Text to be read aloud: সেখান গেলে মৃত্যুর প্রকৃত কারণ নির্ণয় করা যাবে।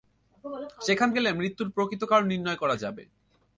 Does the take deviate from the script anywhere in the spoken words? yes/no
no